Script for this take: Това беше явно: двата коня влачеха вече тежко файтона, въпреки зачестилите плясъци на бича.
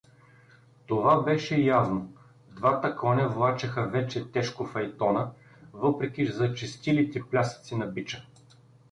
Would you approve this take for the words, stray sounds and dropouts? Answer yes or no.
yes